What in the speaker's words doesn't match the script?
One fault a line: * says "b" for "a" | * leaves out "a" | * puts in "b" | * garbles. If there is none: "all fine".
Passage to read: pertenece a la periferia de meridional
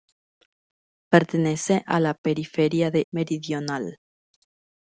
all fine